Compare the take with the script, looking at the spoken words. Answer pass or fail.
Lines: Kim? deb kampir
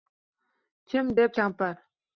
pass